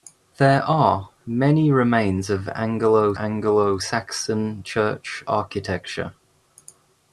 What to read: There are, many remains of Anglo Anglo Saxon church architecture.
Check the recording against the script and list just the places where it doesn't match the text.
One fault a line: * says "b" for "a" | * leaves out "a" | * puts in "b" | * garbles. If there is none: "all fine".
all fine